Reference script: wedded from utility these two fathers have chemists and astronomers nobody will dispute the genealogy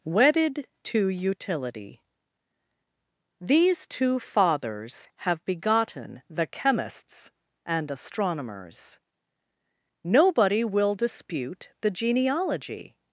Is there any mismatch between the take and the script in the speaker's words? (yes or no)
yes